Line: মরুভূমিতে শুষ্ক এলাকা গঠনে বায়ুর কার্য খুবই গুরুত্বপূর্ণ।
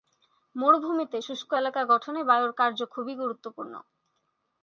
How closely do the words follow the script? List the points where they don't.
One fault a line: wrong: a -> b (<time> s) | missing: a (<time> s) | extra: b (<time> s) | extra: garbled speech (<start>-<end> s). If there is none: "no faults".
no faults